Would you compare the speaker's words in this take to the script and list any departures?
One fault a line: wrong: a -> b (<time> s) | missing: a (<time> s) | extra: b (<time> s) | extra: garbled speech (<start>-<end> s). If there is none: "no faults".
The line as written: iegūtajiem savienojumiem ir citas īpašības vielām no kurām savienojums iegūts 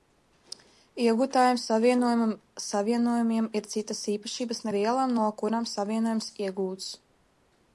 no faults